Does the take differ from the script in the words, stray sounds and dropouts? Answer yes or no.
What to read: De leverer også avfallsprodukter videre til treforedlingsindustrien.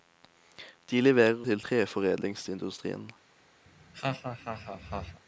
yes